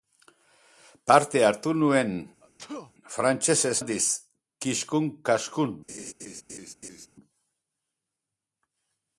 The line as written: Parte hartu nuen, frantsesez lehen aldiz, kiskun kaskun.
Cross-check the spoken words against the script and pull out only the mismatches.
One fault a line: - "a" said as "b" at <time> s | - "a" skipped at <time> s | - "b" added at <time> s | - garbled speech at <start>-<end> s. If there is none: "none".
- "lehen" skipped at 3.7 s